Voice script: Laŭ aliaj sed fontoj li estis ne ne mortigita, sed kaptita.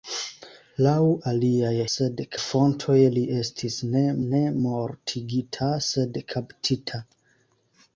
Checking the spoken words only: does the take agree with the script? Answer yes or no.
yes